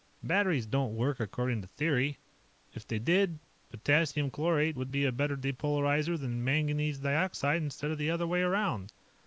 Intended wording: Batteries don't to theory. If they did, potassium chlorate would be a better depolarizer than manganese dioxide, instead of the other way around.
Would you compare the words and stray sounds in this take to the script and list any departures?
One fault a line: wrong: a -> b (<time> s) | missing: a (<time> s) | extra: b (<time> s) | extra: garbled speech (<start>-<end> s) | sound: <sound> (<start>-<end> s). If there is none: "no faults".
extra: work according (0.9 s)